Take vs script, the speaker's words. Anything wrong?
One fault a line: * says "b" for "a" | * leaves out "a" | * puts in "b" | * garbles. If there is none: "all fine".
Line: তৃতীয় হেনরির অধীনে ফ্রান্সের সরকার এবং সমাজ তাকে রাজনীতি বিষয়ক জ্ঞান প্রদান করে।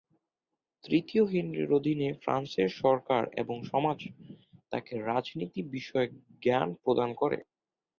all fine